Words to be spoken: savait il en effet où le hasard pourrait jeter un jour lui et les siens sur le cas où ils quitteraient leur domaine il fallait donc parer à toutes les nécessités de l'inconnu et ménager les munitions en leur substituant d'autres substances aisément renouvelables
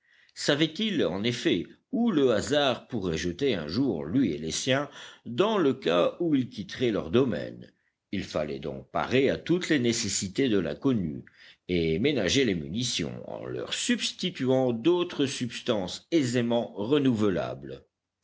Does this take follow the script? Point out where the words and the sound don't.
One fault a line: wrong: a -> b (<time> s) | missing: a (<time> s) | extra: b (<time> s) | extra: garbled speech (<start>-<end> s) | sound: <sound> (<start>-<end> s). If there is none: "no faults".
wrong: sur -> dans (5.3 s)